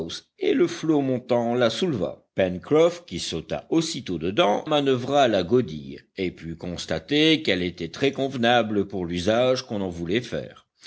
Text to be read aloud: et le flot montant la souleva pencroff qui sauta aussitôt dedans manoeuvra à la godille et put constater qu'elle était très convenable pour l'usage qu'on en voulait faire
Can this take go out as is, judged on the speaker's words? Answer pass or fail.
pass